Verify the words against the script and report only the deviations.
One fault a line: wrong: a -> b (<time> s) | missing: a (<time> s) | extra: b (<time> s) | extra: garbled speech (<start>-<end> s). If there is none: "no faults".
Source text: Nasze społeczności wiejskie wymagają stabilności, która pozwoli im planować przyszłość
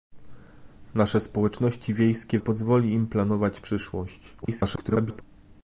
missing: wymagają stabilności która (2.4 s)
extra: garbled speech (4.4-5.2 s)